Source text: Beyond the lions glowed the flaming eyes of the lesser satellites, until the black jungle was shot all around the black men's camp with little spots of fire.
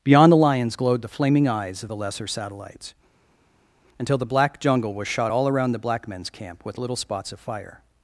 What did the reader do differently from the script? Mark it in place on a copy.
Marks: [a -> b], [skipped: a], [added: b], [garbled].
Beyond the lions glowed the flaming eyes of the lesser satellites, until the black jungle was shot all around the black men's camp with little spots of fire.